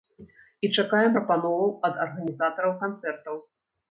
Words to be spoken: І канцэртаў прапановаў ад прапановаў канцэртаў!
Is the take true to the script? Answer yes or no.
no